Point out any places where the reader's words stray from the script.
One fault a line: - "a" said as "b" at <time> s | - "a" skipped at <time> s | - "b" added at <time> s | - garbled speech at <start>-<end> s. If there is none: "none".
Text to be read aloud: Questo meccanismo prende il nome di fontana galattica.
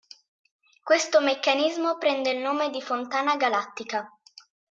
none